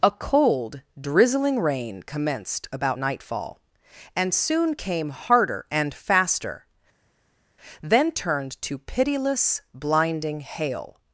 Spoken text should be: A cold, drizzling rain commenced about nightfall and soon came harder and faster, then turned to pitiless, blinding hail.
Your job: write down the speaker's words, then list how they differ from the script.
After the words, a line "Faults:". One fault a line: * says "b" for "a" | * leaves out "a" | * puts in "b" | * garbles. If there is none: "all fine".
A cold, drizzling rain commenced about nightfall and soon came harder and faster, then turned to pitiless, blinding hail.
Faults:
all fine